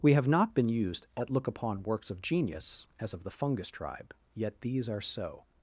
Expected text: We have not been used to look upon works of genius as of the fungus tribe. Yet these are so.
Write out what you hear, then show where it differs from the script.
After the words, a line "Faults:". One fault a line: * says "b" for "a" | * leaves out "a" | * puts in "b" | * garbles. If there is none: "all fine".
We have not been used at look upon works of genius as of the fungus tribe. Yet these are so.
Faults:
* says "at" for "to"